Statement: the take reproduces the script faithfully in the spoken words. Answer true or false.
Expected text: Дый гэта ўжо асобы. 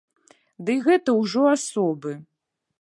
true